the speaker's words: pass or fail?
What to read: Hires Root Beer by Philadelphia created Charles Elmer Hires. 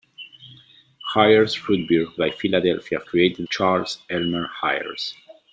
pass